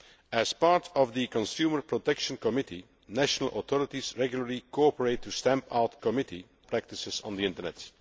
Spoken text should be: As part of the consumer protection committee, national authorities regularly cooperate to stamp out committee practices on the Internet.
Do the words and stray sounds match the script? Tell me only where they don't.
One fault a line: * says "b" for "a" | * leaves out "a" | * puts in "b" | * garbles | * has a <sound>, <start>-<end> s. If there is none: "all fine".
all fine